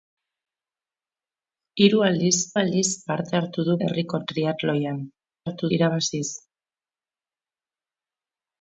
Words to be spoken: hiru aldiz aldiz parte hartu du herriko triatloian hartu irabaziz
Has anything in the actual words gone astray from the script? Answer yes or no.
no